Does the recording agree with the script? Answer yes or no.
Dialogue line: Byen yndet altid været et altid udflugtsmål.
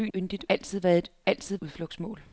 yes